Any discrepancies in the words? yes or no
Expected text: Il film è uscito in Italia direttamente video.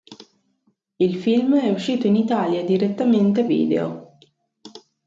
no